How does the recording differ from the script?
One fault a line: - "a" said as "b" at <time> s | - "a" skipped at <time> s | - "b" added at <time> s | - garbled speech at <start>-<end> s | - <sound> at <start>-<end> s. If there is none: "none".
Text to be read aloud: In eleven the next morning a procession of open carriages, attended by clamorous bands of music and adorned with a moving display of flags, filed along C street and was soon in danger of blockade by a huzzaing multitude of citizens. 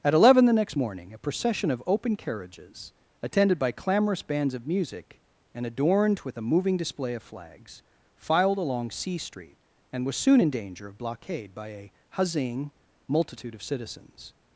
- "In" said as "At" at 0.0 s